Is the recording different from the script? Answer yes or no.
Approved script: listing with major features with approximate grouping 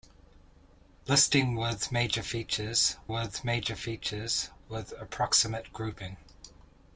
yes